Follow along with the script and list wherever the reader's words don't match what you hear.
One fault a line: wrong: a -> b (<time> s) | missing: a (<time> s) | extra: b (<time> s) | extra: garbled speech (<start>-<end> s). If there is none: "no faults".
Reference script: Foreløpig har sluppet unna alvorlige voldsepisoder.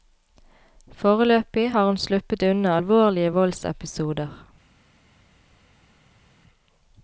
extra: hun (1.9 s)